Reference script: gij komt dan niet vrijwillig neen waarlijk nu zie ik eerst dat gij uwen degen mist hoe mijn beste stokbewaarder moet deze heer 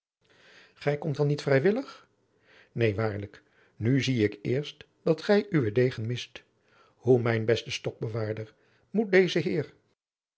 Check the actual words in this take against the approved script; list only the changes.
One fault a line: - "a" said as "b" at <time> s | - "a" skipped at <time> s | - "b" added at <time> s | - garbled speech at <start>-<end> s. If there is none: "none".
none